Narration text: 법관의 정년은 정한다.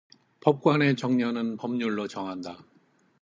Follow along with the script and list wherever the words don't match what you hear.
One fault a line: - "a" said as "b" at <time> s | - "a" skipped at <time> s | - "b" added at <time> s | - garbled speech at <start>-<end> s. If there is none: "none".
- "법률로" added at 1.6 s